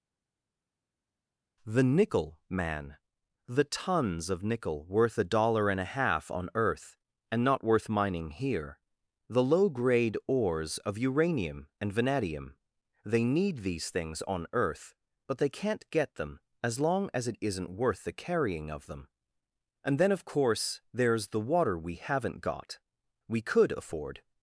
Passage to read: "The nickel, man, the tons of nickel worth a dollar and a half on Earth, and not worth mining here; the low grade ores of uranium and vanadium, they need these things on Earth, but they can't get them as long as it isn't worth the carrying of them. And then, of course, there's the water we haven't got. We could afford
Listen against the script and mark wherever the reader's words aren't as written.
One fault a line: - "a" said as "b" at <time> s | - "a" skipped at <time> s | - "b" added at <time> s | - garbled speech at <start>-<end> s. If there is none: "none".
none